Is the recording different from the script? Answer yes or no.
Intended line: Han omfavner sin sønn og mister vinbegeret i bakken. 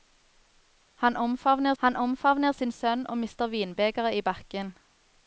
yes